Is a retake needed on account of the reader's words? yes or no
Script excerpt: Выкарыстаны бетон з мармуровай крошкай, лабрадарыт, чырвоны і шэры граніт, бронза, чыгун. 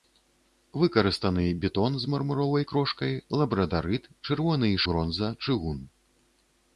yes